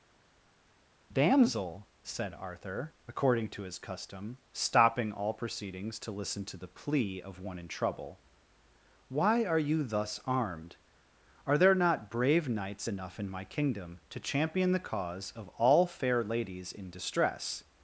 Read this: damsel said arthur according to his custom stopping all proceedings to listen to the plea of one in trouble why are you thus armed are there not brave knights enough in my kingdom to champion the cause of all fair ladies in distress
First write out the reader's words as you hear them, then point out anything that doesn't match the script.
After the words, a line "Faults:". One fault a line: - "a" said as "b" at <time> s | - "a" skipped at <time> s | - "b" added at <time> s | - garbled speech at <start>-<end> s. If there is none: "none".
damsel said arthur according to his custom stopping all proceedings to listen to the plea of one in trouble why are you thus armed are there not brave knights enough in my kingdom to champion the cause of all fair ladies in distress
Faults:
none